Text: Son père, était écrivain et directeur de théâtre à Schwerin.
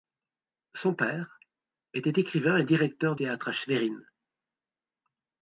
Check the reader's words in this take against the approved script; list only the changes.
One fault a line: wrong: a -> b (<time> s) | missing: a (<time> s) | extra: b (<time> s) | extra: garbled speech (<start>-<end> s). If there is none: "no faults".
missing: de (3.1 s)